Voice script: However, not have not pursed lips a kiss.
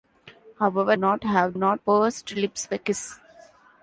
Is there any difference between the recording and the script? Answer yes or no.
no